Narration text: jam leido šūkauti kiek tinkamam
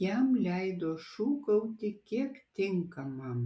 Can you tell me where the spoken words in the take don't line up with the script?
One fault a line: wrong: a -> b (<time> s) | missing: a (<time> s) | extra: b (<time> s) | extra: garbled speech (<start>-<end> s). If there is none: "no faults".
no faults